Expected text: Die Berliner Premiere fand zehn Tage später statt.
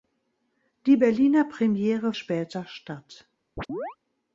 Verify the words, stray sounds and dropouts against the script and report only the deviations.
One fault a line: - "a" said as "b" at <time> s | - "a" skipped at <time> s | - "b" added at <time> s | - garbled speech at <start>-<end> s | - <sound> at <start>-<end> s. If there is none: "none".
- "fand zehn Tage" skipped at 2.1 s
- chirp at 3.6-4.0 s